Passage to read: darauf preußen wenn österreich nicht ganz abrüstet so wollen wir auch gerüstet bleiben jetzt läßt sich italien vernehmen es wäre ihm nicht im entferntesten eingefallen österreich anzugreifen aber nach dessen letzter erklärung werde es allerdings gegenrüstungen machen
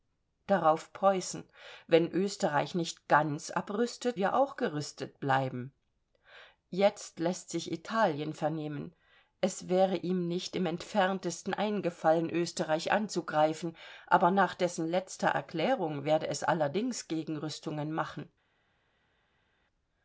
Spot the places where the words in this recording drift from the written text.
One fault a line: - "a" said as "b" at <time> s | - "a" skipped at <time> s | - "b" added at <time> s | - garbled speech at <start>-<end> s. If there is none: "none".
- "so wollen" skipped at 4.2 s